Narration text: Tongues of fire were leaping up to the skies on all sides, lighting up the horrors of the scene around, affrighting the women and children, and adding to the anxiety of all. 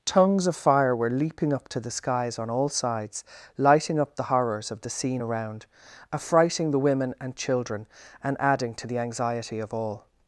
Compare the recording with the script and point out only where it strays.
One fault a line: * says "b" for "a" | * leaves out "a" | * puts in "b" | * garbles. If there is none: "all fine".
all fine